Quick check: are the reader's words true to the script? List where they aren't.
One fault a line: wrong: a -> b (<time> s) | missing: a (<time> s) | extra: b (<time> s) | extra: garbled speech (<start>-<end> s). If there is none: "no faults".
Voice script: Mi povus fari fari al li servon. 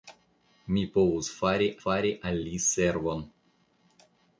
no faults